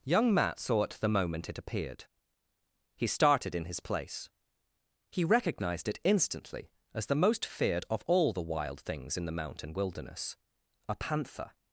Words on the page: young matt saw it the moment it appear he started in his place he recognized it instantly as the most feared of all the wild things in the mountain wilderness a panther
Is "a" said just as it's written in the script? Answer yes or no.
yes